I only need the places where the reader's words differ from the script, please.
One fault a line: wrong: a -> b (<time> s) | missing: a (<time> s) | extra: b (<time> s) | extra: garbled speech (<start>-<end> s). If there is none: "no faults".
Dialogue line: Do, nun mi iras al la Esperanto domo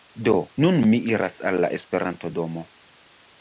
no faults